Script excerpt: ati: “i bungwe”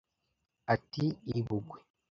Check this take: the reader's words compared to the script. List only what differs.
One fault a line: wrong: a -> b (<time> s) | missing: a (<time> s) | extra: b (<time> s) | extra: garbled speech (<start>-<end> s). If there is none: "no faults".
no faults